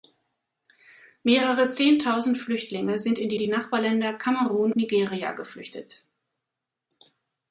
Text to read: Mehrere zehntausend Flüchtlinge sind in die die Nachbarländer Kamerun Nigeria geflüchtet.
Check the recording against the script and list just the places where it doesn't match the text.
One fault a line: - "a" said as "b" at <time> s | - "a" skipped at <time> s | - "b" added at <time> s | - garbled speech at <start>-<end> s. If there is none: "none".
none